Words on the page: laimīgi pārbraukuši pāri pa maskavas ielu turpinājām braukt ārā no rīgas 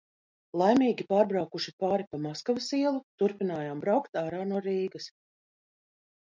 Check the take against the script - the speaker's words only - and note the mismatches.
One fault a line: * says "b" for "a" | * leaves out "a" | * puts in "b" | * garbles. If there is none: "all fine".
all fine